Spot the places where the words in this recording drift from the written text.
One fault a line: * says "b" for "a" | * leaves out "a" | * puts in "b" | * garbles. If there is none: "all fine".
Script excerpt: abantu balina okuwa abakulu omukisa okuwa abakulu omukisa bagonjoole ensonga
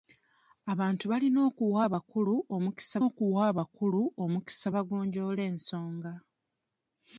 all fine